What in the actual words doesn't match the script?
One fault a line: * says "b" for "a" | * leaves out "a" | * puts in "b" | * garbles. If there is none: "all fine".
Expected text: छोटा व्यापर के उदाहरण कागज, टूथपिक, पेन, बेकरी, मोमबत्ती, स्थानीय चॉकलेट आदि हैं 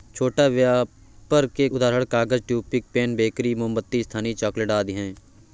all fine